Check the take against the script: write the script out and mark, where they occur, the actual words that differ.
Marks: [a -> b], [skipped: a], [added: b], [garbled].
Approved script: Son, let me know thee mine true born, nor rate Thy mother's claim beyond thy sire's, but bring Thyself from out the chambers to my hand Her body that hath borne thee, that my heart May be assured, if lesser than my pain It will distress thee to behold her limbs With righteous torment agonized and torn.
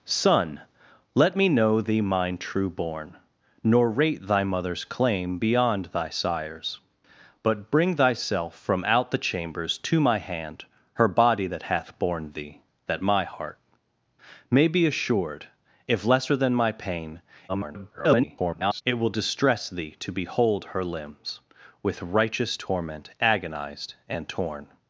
Son, let me know thee mine true born, nor rate Thy mother's claim beyond thy sire's, but bring Thyself from out the chambers to my hand Her body that hath borne thee, that my heart May be assured, if lesser than my pain [garbled] It will distress thee to behold her limbs With righteous torment agonized and torn.